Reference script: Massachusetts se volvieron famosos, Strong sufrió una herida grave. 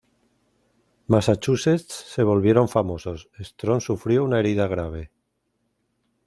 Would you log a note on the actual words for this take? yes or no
no